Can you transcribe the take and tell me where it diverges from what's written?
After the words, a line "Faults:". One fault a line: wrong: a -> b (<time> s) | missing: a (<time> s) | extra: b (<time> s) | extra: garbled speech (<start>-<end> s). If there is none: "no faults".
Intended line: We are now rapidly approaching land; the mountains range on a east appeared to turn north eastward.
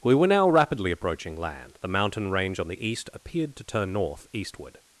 We were now rapidly approaching land; the mountain range on the east appeared to turn north eastward.
Faults:
wrong: are -> were (0.1 s)
wrong: mountains -> mountain (1.9 s)
wrong: a -> the (2.7 s)